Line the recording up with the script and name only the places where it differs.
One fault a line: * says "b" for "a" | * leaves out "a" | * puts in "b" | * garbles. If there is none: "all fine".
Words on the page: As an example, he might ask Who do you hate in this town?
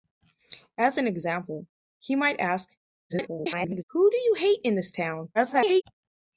* garbles
* garbles